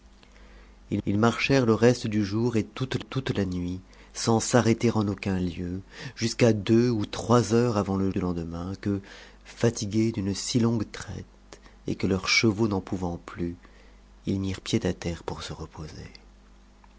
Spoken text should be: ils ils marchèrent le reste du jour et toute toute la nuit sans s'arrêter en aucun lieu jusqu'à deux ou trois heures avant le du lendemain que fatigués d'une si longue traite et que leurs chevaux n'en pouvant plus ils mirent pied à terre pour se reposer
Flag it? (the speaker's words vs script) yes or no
no